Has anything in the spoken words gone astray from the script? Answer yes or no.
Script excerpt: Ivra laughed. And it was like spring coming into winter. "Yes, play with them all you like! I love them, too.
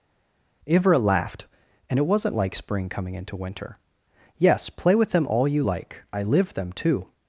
yes